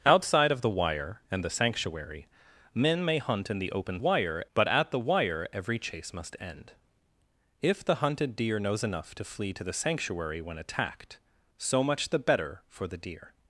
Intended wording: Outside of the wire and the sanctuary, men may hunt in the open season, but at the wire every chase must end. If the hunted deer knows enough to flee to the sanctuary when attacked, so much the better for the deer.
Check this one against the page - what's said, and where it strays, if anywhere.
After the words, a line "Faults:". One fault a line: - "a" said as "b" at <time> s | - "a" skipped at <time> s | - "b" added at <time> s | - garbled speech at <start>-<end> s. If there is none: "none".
Outside of the wire and the sanctuary, men may hunt in the open wire, but at the wire every chase must end. If the hunted deer knows enough to flee to the sanctuary when attacked, so much the better for the deer.
Faults:
- "season" said as "wire" at 4.0 s